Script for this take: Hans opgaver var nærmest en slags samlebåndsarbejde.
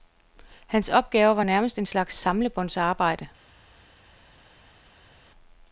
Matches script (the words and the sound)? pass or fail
pass